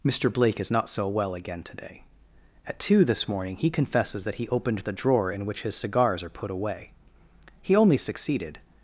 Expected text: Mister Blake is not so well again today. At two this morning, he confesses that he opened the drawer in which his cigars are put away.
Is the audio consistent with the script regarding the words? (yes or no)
no